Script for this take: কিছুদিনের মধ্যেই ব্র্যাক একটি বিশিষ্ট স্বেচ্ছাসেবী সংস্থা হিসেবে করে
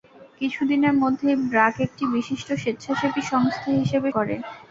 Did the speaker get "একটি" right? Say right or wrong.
right